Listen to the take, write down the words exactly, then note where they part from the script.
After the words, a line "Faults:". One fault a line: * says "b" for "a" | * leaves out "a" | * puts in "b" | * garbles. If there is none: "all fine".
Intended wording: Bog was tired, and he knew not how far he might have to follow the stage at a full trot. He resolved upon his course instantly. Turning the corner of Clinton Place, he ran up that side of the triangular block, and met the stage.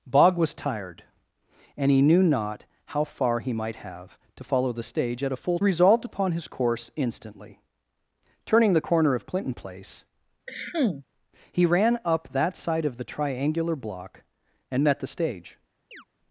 Bog was tired, and he knew not how far he might have to follow the stage at a full resolved upon his course instantly. Turning the corner of Clinton Place, he ran up that side of the triangular block, and met the stage.
Faults:
* leaves out "trot He"